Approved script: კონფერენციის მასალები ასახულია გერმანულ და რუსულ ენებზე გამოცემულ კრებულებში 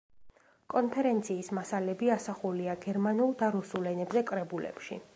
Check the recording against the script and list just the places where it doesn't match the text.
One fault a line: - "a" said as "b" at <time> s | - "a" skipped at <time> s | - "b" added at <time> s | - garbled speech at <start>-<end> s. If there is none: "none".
- "გამოცემულ" skipped at 4.2 s